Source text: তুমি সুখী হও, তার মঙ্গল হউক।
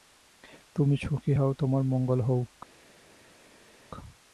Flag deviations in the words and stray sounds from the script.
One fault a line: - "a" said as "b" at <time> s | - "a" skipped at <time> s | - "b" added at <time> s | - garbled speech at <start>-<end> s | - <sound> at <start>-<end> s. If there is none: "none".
- "তার" said as "তোমার" at 1.5 s